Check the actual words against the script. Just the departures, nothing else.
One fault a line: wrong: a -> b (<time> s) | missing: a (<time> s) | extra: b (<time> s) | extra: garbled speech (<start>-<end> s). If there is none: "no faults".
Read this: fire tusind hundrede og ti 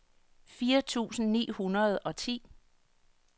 extra: ni (1.3 s)